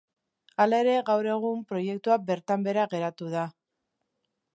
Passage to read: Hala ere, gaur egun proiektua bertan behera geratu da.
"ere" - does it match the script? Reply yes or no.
yes